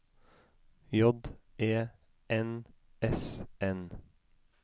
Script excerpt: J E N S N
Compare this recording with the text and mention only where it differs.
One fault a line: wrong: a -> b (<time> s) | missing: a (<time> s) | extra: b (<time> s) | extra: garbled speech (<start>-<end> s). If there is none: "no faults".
no faults